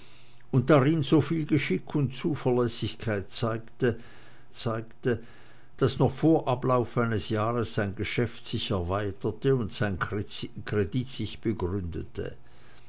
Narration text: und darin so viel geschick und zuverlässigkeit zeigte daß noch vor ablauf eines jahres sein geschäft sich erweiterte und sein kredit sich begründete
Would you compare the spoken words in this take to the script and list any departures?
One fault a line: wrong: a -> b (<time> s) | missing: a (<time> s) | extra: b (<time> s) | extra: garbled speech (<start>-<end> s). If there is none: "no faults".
extra: zeigte (4.5 s)